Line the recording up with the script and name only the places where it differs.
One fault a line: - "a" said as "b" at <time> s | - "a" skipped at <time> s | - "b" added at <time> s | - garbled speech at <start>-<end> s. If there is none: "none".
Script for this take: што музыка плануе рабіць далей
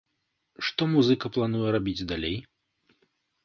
none